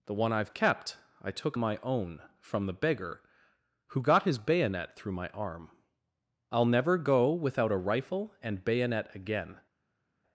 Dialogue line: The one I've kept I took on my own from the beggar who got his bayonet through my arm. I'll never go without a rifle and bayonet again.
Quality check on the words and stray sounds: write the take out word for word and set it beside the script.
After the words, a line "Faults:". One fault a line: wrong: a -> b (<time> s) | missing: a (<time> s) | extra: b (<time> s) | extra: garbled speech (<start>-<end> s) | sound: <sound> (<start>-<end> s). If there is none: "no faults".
The one I've kept I took my own from the beggar who got his bayonet through my arm. I'll never go without a rifle and bayonet again.
Faults:
missing: on (1.6 s)